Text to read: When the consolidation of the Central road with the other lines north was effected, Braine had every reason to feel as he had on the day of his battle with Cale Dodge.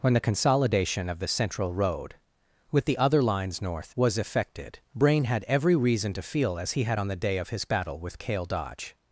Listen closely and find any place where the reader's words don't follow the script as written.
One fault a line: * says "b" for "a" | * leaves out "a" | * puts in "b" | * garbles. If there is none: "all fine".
all fine